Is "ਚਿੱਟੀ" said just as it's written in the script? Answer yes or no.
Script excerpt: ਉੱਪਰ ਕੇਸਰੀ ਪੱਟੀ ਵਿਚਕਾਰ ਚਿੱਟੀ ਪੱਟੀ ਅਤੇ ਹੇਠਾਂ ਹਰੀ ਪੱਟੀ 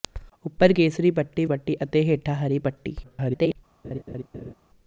no